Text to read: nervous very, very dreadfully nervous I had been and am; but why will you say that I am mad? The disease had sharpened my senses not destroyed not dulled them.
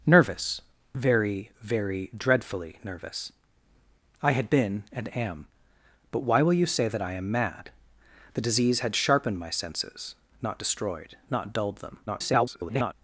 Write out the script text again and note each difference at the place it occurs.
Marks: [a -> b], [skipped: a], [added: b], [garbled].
nervous very, very dreadfully nervous I had been and am; but why will you say that I am mad? The disease had sharpened my senses not destroyed not dulled them. [garbled]